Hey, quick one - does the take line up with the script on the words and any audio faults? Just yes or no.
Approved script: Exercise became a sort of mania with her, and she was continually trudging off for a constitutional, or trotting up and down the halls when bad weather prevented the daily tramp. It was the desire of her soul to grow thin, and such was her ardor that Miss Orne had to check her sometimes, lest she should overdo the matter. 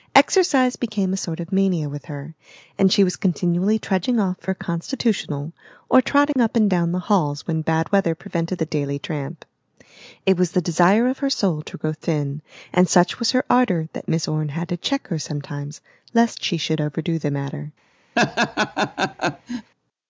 no